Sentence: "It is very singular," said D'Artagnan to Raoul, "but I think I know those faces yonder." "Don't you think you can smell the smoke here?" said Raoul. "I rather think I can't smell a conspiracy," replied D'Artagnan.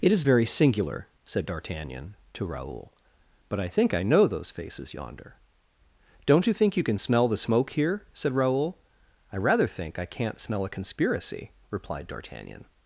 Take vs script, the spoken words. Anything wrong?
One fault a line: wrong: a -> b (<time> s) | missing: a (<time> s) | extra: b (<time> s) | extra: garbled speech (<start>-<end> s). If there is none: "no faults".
no faults